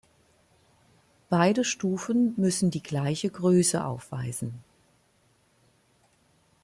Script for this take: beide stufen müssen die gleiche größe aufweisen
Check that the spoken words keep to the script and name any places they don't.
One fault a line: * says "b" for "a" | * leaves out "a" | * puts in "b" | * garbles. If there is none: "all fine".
all fine